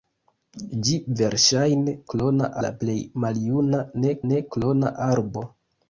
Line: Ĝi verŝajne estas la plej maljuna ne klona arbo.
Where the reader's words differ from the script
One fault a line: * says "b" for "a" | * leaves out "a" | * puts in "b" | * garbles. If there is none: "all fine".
* says "klona" for "estas"
* puts in "ne"